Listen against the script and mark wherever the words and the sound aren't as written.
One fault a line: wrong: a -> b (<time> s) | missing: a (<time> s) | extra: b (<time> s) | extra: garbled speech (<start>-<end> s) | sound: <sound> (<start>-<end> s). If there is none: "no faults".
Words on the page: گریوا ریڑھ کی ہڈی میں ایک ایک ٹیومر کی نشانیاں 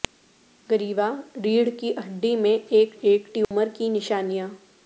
sound: dropout (3.4-3.5 s)